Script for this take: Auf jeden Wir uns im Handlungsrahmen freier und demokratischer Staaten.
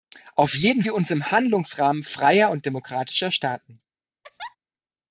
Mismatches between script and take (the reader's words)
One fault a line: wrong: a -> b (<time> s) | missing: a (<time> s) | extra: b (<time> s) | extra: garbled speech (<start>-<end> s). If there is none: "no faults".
no faults